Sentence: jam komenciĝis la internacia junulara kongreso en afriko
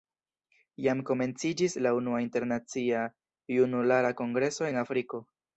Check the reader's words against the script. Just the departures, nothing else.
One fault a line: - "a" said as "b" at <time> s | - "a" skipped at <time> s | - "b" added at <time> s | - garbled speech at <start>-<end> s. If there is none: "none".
- "unua" added at 2.0 s